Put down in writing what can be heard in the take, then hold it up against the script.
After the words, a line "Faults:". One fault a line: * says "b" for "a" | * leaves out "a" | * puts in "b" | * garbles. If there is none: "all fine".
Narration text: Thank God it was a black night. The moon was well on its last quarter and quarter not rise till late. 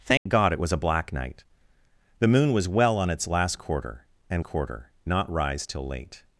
Thank God it was a black night. The moon was well on its last quarter and quarter not rise till late.
Faults:
all fine